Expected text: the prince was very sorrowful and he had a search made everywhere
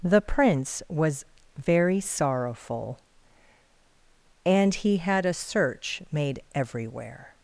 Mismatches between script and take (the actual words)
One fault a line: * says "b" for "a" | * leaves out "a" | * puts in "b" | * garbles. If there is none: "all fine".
all fine